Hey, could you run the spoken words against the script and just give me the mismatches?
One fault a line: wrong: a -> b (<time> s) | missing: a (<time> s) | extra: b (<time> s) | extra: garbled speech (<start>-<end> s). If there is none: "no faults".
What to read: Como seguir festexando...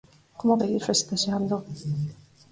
no faults